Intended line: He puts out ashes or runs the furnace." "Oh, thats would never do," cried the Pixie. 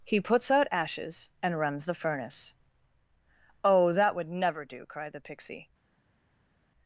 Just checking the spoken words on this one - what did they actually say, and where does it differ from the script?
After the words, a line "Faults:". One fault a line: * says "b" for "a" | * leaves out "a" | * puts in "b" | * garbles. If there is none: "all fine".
He puts out ashes and runs the furnace." "Oh, that would never do," cried the Pixie.
Faults:
* says "and" for "or"
* says "that" for "thats"